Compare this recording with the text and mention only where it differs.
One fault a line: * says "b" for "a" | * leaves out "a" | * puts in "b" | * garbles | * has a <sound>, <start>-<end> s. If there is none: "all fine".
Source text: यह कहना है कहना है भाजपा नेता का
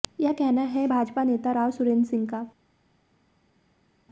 * says "भाजपा नेता राव सुरेंद्र सिंह" for "कहना है भाजपा नेता"